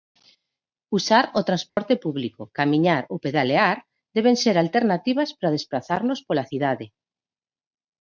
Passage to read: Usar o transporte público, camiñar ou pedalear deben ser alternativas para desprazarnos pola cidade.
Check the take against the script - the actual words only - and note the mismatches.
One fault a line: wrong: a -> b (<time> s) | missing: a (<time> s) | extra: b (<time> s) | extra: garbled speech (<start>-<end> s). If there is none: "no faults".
no faults